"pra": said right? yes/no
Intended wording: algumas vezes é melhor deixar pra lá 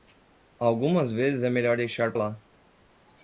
no